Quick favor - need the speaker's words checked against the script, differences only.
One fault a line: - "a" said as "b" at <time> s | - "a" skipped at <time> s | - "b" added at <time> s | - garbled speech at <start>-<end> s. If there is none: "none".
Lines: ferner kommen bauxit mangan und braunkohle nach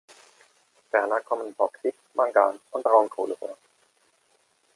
- "nach" said as "vor" at 3.4 s